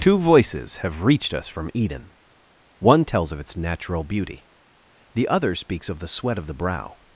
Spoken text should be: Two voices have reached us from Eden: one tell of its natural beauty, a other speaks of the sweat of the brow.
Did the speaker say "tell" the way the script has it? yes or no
no